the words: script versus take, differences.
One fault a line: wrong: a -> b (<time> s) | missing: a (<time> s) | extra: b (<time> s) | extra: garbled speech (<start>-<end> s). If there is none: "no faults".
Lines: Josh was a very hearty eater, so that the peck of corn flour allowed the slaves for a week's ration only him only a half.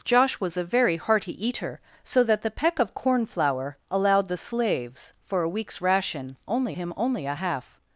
no faults